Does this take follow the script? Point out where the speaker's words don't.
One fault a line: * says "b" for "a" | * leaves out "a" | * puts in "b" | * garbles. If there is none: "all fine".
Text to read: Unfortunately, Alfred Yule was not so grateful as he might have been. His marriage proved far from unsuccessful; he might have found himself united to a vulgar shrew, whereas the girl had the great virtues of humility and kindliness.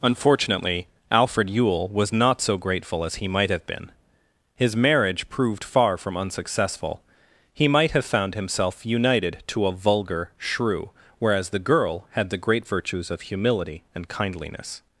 all fine